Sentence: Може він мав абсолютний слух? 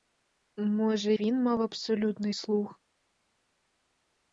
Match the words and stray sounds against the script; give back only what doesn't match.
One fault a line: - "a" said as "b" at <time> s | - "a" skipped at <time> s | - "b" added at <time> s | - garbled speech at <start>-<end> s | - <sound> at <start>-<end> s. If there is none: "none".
none